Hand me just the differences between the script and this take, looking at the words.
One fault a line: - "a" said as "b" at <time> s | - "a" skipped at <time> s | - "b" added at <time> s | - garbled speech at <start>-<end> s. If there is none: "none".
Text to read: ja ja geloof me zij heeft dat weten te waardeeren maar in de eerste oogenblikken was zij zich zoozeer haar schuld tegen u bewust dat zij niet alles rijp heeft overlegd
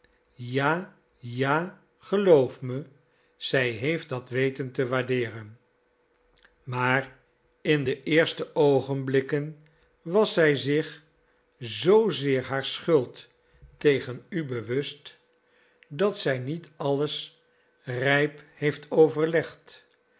none